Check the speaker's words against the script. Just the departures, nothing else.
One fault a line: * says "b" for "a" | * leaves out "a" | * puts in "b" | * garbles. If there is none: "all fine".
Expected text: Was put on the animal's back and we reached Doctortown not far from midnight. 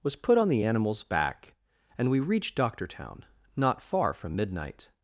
all fine